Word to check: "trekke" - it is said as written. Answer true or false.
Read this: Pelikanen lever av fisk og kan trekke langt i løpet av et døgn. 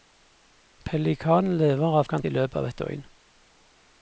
false